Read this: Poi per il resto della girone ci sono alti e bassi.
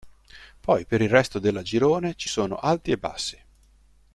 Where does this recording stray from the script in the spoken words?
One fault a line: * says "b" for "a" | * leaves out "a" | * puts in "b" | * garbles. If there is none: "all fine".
all fine